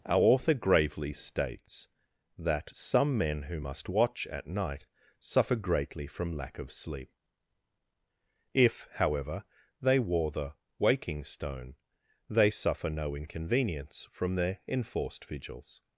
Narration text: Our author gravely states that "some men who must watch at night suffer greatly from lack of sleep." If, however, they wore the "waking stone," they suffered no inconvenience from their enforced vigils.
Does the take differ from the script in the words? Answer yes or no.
yes